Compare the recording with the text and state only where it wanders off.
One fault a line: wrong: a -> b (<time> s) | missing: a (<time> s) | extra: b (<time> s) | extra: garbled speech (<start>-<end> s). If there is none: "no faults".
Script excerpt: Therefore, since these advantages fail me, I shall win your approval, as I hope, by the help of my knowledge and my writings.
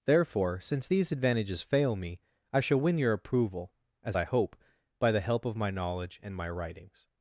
no faults